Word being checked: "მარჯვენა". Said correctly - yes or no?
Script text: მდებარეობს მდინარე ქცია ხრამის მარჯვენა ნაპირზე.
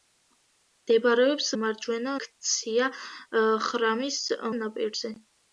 no